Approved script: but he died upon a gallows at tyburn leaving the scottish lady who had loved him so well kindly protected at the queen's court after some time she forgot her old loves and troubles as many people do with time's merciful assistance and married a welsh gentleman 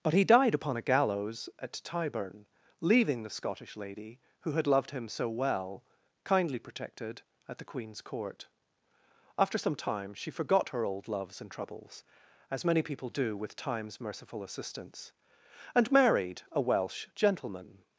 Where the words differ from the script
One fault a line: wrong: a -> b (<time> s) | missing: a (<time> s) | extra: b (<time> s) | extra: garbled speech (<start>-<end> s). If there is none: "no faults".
no faults